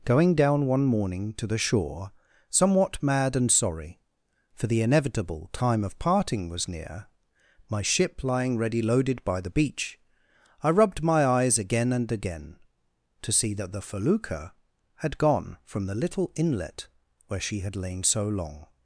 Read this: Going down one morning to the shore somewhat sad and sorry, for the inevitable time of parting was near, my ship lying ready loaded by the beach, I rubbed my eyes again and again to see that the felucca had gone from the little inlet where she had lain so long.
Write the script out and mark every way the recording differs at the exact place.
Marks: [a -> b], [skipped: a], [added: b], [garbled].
Going down one morning to the shore somewhat [sad -> mad] and sorry, for the inevitable time of parting was near, my ship lying ready loaded by the beach, I rubbed my eyes again and again to see that the felucca had gone from the little inlet where she had lain so long.